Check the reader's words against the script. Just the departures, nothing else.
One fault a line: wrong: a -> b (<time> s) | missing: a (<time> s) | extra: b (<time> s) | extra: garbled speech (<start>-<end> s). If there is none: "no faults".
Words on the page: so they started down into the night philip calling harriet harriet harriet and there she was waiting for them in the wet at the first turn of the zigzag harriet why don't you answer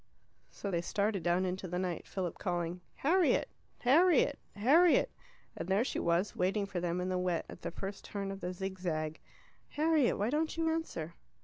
no faults